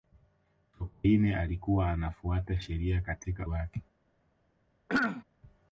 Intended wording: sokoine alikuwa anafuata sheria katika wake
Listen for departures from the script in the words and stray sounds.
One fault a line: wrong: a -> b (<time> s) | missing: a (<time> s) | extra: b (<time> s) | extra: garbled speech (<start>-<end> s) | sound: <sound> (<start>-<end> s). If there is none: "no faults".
sound: throat clearing (4.9-5.2 s)